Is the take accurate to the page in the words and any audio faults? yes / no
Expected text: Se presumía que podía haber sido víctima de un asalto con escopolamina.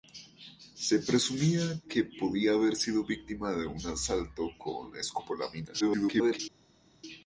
no